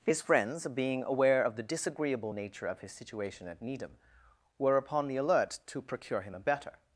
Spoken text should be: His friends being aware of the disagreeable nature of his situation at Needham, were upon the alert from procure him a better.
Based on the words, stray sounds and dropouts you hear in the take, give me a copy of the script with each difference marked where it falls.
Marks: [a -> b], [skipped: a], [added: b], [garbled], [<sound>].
His friends being aware of the disagreeable nature of his situation at Needham, were upon the alert [from -> to] procure him a better.